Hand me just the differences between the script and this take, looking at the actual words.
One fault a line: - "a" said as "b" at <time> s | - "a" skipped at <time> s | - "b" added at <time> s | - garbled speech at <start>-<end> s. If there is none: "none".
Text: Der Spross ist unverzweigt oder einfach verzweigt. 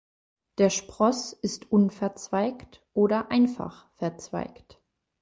none